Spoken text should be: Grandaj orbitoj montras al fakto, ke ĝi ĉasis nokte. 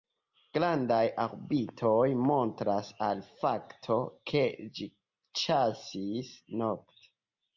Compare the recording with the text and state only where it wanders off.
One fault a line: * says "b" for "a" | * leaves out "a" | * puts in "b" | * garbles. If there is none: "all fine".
all fine